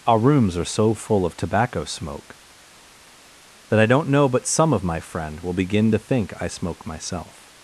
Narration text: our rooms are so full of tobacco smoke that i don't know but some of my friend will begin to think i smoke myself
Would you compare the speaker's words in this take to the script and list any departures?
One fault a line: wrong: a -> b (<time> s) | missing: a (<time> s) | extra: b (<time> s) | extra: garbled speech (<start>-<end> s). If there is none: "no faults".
no faults